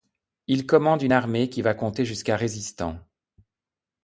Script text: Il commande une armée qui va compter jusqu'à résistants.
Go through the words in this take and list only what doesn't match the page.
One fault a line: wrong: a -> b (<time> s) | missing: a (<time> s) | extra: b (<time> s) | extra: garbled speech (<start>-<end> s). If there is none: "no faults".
no faults